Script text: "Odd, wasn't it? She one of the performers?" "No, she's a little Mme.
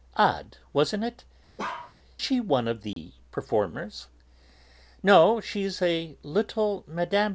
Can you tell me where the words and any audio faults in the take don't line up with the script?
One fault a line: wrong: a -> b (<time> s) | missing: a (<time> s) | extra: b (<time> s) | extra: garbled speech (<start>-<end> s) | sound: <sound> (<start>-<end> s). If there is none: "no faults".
sound: bark (1.6-1.9 s)
sound: dropout (2.9-3.0 s)